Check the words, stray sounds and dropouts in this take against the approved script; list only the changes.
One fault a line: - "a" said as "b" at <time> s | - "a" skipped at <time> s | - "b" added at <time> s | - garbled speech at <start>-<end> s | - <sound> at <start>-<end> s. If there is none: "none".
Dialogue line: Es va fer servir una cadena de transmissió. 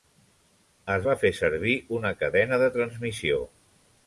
none